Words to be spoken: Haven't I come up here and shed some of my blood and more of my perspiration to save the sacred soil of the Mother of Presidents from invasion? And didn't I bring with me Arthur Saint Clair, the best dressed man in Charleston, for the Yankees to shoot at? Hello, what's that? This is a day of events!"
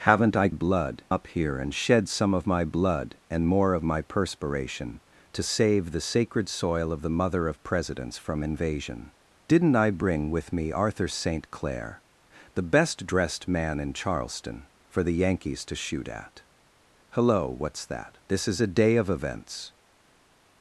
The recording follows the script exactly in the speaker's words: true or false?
false